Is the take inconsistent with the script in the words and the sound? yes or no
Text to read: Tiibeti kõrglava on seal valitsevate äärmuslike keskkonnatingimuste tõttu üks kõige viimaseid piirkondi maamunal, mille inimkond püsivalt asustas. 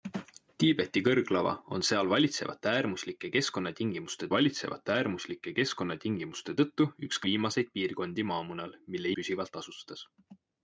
yes